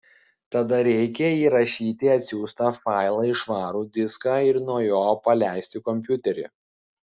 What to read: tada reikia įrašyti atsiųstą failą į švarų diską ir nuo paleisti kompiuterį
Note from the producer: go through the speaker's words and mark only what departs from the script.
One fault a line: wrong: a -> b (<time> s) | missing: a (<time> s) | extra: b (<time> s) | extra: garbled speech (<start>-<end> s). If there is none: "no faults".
extra: jo (4.9 s)